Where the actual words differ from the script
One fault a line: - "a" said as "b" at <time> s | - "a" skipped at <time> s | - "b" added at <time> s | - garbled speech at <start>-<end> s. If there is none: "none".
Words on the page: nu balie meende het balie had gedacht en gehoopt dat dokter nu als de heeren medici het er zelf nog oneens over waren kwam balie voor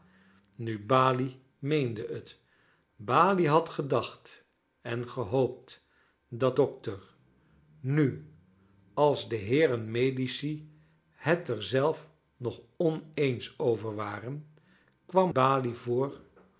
none